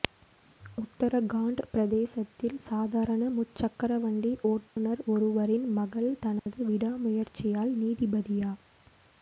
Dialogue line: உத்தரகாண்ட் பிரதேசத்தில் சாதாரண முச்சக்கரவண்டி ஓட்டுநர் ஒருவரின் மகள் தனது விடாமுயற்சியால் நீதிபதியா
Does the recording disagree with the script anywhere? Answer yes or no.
no